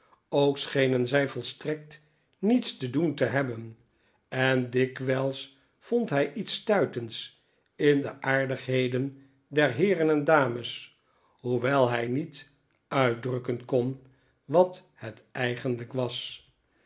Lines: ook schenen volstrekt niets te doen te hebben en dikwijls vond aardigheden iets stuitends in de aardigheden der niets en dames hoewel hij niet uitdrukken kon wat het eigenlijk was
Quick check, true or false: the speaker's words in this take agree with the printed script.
false